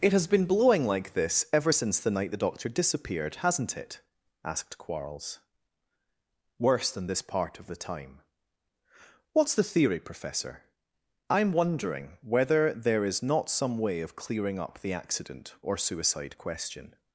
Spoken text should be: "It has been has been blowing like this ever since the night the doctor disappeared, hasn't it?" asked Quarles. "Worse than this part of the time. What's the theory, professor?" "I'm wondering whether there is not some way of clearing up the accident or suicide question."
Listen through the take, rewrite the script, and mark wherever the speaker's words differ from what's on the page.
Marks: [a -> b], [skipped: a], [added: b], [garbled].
"It has been [skipped: has been] blowing like this ever since the night the doctor disappeared, hasn't it?" asked Quarles. "Worse than this part of the time. What's the theory, professor?" "I'm wondering whether there is not some way of clearing up the accident or suicide question."